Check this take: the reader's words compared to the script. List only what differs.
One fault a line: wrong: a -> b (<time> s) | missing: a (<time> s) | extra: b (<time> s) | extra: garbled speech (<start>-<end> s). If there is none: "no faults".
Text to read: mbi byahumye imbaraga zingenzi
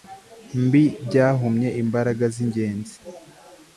no faults